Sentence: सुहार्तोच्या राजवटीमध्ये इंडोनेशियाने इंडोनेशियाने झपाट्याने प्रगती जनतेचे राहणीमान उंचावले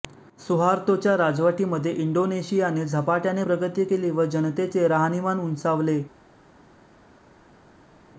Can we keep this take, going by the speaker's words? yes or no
no